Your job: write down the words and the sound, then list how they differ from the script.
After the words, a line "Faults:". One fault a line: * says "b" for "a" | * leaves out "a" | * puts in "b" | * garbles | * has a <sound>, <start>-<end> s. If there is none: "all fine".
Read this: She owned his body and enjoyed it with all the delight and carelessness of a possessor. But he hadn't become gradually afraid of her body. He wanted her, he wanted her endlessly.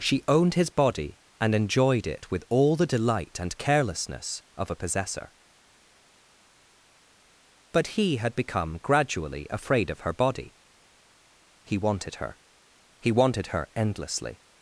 She owned his body and enjoyed it with all the delight and carelessness of a possessor. But he had become gradually afraid of her body. He wanted her, he wanted her endlessly.
Faults:
* says "had" for "hadn't"